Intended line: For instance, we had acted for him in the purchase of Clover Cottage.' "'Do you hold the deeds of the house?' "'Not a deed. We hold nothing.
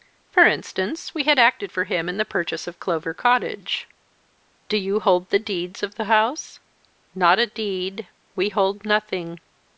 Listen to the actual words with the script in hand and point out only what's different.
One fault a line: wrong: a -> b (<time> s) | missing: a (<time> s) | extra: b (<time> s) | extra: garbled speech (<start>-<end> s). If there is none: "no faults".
no faults